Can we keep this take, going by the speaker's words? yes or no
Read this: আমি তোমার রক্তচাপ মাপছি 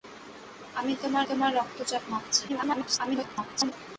no